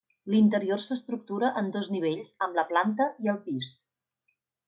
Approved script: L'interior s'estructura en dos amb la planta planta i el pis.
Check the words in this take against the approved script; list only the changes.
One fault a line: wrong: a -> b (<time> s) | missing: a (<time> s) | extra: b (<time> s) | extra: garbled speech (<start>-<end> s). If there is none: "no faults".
extra: nivells (2.0 s)
missing: planta (3.1 s)